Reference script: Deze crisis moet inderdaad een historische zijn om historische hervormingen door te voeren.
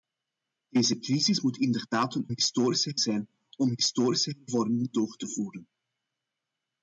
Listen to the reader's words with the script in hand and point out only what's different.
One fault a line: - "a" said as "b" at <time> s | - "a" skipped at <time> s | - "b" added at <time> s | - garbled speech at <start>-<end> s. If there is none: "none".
none